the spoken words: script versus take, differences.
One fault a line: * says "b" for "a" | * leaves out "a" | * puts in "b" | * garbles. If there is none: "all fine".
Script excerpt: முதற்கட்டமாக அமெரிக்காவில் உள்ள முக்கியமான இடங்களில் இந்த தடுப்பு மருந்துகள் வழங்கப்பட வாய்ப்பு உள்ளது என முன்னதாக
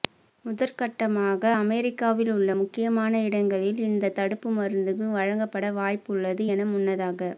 all fine